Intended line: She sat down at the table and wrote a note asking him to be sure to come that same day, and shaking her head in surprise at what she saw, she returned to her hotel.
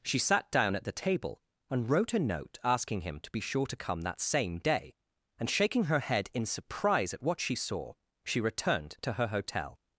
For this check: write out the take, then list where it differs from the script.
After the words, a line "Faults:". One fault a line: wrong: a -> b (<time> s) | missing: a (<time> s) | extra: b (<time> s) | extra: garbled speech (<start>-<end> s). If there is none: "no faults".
She sat down at the table and wrote a note asking him to be sure to come that same day, and shaking her head in surprise at what she saw, she returned to her hotel.
Faults:
no faults